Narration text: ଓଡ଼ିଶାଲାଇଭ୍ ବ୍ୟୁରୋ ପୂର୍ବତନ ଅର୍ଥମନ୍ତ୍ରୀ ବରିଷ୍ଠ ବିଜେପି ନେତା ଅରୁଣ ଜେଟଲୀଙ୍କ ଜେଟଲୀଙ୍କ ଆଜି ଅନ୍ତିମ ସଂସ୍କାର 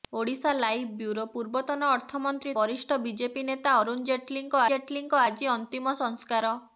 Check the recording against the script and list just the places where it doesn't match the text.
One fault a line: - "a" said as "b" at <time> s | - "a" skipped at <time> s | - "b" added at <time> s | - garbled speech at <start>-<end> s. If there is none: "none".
none